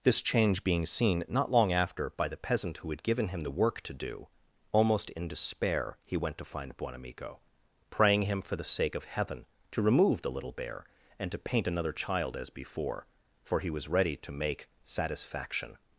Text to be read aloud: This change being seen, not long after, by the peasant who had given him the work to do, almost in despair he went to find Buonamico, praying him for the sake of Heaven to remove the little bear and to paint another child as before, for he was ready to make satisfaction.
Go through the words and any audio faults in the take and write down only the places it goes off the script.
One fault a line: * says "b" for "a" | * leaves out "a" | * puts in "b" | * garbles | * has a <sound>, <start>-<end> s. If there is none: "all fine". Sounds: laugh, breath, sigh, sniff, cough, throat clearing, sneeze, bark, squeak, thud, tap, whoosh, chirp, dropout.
all fine